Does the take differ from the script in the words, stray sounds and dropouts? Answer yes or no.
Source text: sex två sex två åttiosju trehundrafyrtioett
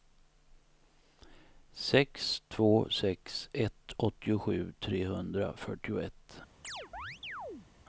yes